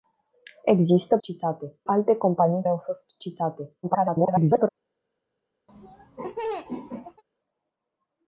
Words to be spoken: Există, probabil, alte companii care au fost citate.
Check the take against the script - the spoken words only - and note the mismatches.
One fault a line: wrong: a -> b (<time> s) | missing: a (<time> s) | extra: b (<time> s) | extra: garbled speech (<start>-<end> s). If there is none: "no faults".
wrong: probabil -> citate (1.2 s)
missing: care (2.6 s)
extra: garbled speech (3.8-4.7 s)